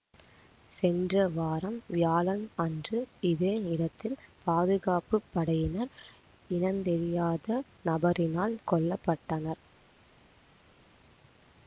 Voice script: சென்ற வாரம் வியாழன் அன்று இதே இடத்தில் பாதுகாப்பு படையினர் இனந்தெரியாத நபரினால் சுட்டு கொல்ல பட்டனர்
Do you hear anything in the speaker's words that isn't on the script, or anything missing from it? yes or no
yes